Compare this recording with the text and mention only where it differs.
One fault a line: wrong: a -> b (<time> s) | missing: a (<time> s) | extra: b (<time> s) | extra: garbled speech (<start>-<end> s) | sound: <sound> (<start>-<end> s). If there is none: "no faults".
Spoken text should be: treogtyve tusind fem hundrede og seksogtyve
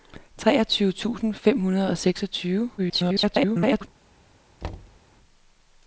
extra: garbled speech (2.8-3.9 s)
sound: thud (4.6-5.0 s)